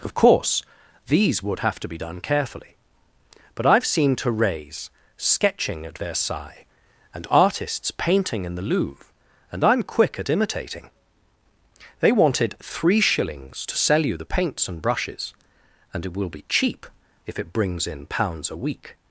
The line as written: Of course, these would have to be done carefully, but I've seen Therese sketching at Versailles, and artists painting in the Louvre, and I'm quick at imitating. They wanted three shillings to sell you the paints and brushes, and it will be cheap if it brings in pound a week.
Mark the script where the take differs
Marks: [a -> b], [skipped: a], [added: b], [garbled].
Of course, these would have to be done carefully, but I've seen Therese sketching at Versailles, and artists painting in the Louvre, and I'm quick at imitating. They wanted three shillings to sell you the paints and brushes, and it will be cheap if it brings in [pound -> pounds] a week.